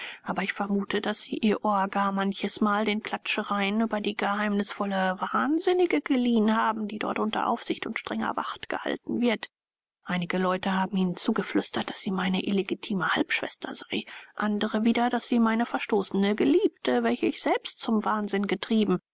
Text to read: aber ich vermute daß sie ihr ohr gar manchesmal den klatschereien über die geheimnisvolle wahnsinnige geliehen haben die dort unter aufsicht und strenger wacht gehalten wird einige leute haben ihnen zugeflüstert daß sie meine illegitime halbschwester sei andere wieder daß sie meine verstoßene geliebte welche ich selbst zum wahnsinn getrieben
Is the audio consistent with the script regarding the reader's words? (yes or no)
yes